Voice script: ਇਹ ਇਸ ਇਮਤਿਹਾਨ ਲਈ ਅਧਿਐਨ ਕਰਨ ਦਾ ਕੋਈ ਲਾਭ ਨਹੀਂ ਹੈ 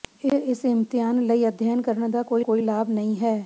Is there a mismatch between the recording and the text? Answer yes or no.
yes